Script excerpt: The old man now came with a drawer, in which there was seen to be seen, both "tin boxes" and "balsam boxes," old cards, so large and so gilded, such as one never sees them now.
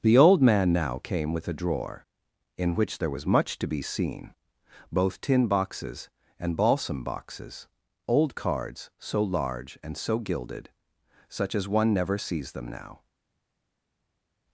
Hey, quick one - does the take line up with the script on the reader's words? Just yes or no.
no